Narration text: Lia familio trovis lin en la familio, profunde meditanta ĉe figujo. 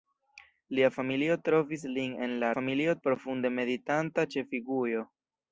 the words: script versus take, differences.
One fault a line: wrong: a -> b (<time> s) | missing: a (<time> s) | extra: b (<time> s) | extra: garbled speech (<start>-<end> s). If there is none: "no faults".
no faults